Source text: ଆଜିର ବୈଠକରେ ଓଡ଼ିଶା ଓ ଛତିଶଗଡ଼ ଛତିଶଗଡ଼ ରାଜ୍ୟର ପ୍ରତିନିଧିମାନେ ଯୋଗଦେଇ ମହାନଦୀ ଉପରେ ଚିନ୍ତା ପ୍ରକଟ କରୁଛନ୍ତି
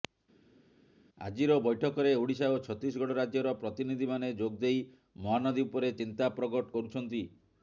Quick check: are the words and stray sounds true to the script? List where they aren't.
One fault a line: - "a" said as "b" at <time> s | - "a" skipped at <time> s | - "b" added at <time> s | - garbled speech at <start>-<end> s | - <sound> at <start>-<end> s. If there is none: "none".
- "ଛତିଶଗଡ଼" skipped at 3.2 s